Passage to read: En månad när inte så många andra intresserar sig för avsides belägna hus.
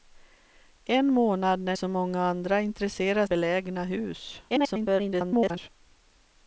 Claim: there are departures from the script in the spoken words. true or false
true